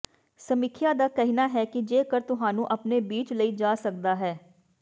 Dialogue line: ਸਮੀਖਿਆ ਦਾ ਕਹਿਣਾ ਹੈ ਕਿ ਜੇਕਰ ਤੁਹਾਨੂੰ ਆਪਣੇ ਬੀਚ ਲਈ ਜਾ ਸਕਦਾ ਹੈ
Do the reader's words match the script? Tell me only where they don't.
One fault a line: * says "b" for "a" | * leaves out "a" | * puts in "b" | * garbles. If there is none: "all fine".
all fine